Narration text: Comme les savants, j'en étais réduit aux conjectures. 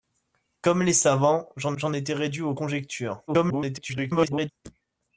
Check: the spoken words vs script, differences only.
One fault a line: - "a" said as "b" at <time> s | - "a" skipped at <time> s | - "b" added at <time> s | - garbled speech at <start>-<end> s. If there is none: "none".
- "j'en" added at 1.8 s
- garbled speech at 3.3-4.5 s